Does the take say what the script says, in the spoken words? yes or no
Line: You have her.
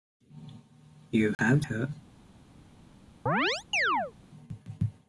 yes